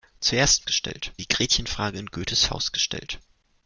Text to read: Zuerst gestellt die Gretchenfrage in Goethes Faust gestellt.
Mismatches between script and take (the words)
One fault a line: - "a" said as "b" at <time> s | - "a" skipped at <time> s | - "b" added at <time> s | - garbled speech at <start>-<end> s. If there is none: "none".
none